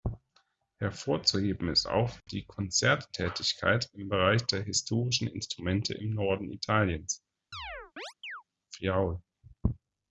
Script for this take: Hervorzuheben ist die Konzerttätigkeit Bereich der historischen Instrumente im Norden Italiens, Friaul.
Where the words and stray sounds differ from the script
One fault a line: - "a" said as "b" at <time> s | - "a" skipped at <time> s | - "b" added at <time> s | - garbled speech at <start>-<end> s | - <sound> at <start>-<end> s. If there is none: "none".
- "auch" added at 1.9 s
- "im" added at 3.9 s
- chirp at 7.5-8.4 s